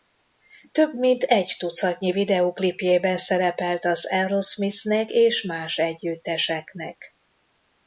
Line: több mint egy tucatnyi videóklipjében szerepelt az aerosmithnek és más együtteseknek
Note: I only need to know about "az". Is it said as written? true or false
true